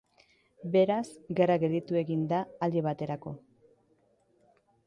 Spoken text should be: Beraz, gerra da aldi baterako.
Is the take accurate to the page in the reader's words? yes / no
no